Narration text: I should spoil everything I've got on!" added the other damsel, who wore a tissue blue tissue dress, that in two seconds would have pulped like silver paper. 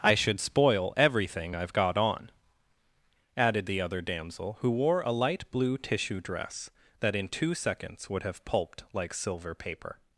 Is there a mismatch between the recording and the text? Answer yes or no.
yes